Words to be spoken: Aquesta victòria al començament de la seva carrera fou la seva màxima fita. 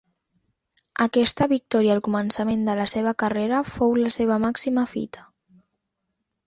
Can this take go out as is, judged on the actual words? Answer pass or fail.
pass